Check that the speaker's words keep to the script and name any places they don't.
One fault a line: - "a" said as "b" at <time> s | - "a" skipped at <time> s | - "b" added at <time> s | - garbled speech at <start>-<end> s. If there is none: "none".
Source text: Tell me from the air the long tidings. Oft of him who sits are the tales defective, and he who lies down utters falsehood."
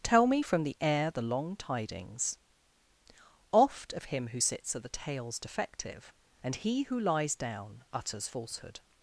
none